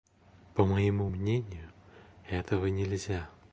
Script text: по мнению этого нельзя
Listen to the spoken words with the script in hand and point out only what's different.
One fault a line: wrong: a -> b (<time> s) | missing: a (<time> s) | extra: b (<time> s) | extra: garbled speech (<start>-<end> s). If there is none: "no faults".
extra: моему (0.7 s)